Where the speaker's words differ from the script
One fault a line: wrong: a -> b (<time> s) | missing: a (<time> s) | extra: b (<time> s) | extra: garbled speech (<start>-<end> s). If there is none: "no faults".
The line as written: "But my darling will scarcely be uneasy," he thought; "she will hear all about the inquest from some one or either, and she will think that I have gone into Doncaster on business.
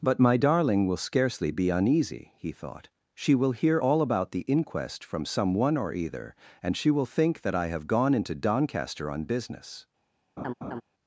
no faults